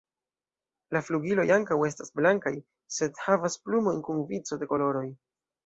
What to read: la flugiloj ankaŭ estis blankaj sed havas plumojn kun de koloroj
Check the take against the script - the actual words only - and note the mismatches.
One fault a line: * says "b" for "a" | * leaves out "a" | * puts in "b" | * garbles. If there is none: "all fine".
* says "estas" for "estis"
* puts in "vico"